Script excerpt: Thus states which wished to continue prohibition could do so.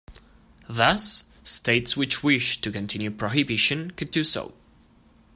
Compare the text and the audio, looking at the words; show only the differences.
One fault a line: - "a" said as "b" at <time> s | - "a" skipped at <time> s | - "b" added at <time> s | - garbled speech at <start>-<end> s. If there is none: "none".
none